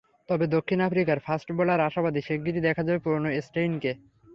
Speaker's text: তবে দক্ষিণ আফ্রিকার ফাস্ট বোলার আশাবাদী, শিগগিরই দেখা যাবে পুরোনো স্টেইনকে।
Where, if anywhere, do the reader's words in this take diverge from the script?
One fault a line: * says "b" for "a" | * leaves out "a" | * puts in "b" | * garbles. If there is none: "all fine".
all fine